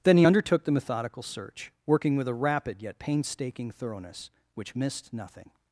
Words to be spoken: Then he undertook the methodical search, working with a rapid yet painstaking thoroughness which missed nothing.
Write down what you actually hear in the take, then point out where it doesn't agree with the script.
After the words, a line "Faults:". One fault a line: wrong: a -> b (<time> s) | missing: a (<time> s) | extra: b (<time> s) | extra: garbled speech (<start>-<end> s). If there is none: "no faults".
Then he undertook the methodical search, working with a rapid yet painstaking thoroughness which missed nothing.
Faults:
no faults